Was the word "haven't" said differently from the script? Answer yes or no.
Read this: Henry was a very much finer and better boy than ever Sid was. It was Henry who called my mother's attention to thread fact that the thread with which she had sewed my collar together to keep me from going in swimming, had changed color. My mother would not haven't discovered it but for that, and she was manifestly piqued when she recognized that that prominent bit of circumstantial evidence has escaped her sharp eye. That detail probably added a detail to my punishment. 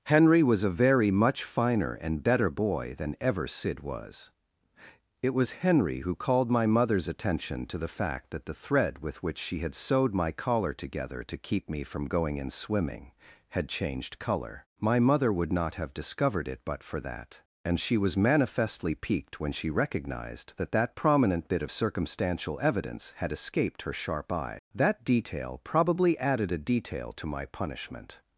yes